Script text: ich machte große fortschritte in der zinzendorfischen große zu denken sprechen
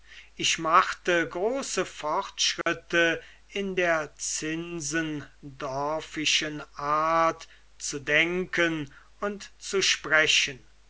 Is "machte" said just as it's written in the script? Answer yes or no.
yes